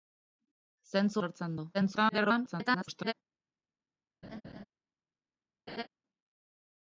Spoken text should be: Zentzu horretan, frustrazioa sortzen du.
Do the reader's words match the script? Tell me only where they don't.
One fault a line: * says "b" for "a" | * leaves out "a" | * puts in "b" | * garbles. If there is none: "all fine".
* leaves out "horretan frustrazioa"
* garbles